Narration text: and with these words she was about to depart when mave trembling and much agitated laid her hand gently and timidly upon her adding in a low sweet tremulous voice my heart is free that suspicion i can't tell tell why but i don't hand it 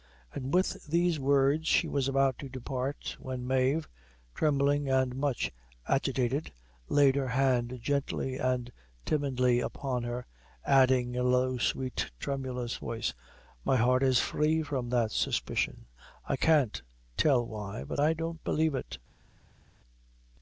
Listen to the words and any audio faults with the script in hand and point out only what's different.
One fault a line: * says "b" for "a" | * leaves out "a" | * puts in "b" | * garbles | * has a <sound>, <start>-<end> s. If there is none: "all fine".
* puts in "from"
* leaves out "tell"
* says "believe" for "hand"